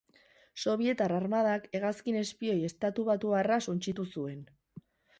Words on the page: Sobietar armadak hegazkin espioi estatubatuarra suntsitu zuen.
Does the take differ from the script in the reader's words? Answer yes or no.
no